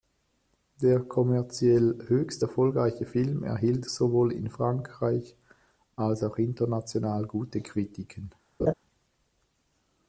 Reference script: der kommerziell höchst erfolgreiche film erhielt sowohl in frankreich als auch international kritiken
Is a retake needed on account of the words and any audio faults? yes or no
yes